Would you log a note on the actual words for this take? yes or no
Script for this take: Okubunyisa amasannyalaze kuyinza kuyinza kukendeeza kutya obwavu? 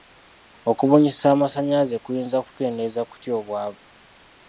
yes